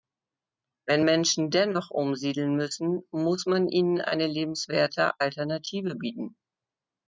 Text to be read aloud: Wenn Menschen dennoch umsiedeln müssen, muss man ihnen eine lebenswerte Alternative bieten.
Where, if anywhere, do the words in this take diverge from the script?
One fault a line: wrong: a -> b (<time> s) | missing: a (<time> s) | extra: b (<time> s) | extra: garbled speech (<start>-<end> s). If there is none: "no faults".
no faults